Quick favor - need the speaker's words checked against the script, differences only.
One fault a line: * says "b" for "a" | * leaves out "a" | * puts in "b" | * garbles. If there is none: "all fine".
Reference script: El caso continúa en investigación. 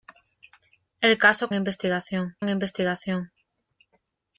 * says "investigación" for "continúa"